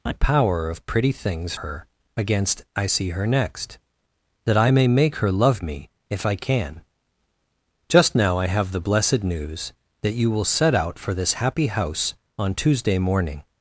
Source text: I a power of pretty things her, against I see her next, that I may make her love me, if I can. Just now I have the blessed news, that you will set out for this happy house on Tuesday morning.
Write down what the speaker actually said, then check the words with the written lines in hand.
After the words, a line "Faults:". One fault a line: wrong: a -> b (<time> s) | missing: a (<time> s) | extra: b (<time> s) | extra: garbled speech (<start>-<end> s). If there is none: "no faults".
I a power of pretty things her, against I see her next, that I may make her love me, if I can. Just now I have the blessed news, that you will set out for this happy house on Tuesday morning.
Faults:
no faults